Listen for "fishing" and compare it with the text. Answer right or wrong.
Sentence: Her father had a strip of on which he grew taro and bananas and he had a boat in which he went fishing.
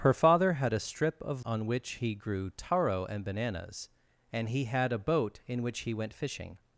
right